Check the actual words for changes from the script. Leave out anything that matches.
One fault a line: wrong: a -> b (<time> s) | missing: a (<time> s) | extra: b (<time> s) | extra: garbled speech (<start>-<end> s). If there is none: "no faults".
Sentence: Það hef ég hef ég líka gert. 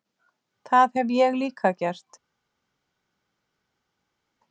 missing: hef ég (1.4 s)